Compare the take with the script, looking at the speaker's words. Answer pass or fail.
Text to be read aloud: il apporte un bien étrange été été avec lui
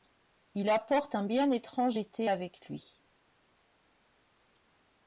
fail